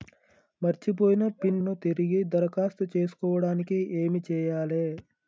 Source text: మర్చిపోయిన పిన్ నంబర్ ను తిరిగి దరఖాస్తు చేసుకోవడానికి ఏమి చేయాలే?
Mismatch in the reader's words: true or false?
true